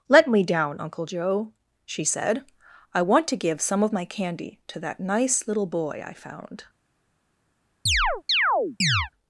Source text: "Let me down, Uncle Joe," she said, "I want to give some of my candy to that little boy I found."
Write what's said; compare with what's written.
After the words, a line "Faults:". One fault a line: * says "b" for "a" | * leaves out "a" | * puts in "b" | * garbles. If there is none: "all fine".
"Let me down, Uncle Joe," she said, "I want to give some of my candy to that nice little boy I found."
Faults:
* puts in "nice"